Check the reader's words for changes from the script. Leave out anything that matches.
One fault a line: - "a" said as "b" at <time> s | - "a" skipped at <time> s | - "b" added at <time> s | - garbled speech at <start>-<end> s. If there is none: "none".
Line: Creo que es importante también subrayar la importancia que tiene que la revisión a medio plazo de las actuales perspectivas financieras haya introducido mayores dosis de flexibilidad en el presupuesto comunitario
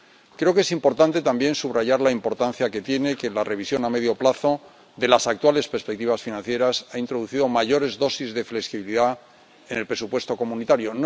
none